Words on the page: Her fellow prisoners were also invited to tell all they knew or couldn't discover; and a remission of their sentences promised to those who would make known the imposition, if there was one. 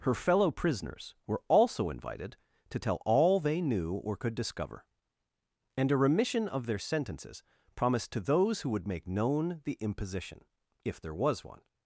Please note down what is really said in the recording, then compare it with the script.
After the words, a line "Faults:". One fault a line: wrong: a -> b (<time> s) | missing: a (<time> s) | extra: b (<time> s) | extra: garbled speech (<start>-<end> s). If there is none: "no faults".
Her fellow prisoners were also invited to tell all they knew or could discover; and a remission of their sentences promised to those who would make known the imposition, if there was one.
Faults:
wrong: couldn't -> could (4.2 s)